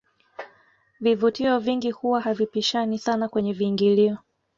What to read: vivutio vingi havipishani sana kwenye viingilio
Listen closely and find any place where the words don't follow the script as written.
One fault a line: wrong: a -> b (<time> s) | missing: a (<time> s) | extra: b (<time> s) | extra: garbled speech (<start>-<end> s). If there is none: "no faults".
extra: huwa (1.9 s)